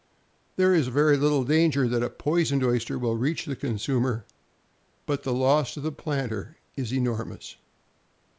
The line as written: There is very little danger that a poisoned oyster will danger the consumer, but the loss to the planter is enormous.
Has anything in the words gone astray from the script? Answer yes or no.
yes